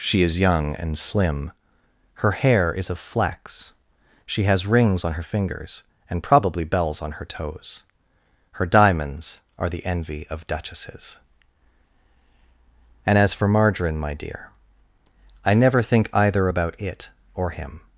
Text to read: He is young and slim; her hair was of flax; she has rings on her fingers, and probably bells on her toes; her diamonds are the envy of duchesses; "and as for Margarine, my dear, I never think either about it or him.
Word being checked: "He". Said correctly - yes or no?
no